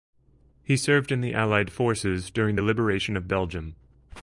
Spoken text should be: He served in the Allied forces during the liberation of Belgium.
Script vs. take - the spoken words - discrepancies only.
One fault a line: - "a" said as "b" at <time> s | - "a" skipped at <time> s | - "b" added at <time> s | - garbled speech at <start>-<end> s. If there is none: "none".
none